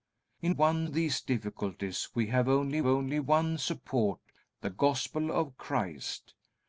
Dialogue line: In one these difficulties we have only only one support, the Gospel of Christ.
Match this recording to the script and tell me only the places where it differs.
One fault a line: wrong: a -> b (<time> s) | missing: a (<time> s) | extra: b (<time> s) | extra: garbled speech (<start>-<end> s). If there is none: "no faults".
no faults